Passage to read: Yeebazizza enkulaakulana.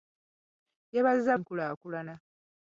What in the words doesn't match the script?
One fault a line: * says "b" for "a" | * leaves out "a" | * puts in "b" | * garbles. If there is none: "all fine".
all fine